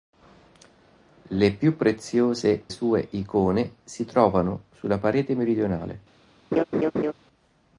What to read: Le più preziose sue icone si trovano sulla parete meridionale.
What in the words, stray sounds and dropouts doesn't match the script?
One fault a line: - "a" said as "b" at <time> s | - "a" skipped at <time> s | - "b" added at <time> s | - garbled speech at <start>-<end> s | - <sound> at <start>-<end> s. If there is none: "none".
- laugh at 6.5-7.1 s